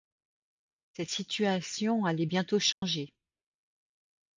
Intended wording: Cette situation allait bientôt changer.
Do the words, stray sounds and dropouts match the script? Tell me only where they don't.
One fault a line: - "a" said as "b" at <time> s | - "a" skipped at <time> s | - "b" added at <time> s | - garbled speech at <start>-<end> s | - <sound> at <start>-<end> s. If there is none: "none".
- dropout at 2.7-2.8 s